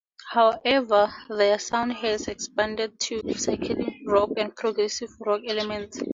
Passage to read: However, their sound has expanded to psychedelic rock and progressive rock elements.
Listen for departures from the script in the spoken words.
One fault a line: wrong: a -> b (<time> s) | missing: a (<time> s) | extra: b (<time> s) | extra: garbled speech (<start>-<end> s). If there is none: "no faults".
no faults